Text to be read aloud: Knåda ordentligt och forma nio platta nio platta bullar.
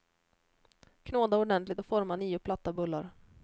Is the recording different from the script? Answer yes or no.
yes